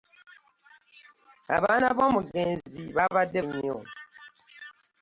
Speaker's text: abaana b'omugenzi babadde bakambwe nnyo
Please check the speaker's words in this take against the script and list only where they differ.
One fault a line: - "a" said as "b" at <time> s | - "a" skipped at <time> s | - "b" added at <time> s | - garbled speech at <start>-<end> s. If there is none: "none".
- "bakambwe" skipped at 3.4 s